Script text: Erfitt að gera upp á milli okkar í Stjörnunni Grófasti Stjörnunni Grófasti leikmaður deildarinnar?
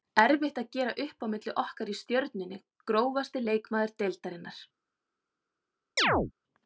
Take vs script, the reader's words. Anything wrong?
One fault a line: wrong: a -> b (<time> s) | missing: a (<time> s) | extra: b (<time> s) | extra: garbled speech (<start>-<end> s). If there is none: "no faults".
missing: Stjörnunni Grófasti (3.5 s)